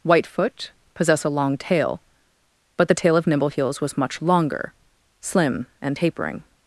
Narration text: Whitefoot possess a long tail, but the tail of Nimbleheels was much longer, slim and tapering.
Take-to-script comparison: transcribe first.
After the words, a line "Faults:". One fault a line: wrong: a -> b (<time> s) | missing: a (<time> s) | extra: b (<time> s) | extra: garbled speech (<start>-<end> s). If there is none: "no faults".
Whitefoot possess a long tail, but the tail of Nimbleheels was much longer, slim and tapering.
Faults:
no faults